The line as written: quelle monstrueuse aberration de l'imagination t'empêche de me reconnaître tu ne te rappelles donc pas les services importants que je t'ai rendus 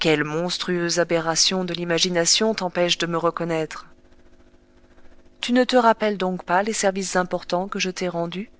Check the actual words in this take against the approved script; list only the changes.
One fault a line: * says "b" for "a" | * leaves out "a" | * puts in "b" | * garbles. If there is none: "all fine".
all fine